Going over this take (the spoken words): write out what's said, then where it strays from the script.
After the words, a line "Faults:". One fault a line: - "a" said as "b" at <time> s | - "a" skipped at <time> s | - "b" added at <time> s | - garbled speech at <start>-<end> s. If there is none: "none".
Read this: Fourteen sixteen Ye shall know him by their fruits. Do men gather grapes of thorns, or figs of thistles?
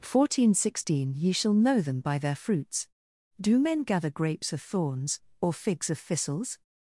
Fourteen sixteen Ye shall know them by their fruits. Do men gather grapes of thorns, or figs of thistles?
Faults:
- "him" said as "them" at 1.8 s